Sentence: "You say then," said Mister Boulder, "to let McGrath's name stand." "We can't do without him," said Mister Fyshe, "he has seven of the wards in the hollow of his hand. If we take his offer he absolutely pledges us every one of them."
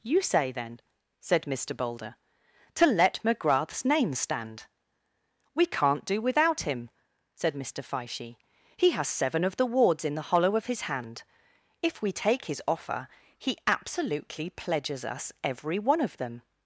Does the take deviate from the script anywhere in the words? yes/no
no